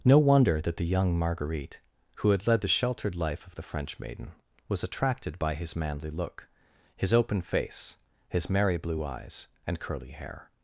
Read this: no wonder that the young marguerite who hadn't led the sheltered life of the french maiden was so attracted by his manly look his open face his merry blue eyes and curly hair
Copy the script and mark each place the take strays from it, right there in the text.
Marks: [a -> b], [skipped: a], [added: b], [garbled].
no wonder that the young marguerite who [hadn't -> had] led the sheltered life of the french maiden was [skipped: so] attracted by his manly look his open face his merry blue eyes and curly hair